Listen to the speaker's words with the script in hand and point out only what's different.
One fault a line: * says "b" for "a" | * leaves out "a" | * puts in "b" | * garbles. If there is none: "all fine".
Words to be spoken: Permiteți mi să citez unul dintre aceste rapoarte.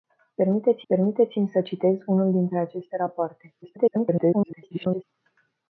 * puts in "permiteți"
* garbles